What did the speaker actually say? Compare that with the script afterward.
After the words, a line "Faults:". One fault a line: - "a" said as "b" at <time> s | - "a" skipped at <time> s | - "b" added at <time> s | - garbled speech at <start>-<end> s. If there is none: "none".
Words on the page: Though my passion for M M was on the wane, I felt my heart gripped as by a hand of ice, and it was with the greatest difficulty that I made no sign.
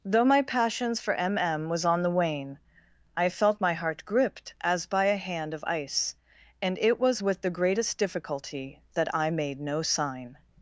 Though my passions for M M was on the wane, I felt my heart gripped as by a hand of ice, and it was with the greatest difficulty that I made no sign.
Faults:
- "passion" said as "passions" at 0.4 s